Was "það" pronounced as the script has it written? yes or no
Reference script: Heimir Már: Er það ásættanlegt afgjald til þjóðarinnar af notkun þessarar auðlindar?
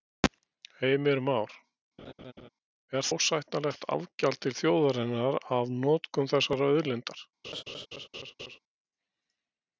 no